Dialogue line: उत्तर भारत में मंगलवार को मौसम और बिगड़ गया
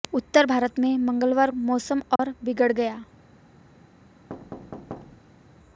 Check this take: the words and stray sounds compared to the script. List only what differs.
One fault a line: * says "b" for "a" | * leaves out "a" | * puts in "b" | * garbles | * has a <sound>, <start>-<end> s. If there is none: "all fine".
* leaves out "को"
* has a dropout, 2.2-2.2 s
* has a thud, 4.3-5.6 s